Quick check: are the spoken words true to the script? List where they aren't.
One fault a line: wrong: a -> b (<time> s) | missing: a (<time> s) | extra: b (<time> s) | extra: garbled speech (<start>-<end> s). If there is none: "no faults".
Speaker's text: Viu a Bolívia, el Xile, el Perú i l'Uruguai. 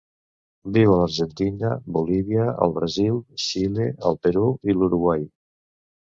extra: l'Argentina (1.0 s)
extra: Brasil (2.8 s)